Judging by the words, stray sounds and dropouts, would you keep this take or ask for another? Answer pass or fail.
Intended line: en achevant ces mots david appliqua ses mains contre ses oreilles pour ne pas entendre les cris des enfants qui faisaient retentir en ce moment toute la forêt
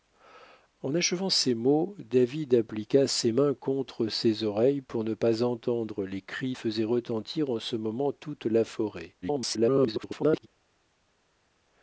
fail